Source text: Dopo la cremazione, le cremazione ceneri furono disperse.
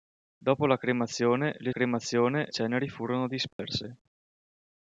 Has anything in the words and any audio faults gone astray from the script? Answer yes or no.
yes